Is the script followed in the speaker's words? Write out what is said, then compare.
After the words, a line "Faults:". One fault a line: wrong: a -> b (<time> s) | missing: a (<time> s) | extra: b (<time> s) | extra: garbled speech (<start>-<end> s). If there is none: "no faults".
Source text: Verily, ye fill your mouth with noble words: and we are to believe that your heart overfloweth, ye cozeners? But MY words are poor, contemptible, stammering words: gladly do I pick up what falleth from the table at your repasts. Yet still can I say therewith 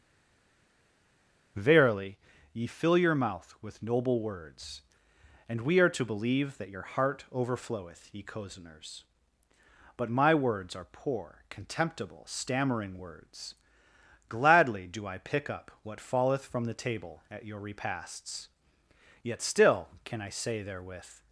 Verily, ye fill your mouth with noble words: and we are to believe that your heart overfloweth, ye cozeners? But MY words are poor, contemptible, stammering words: gladly do I pick up what falleth from the table at your repasts. Yet still can I say therewith
Faults:
no faults